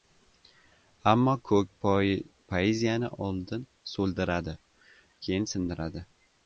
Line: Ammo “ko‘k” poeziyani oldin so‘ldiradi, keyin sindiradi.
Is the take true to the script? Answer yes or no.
yes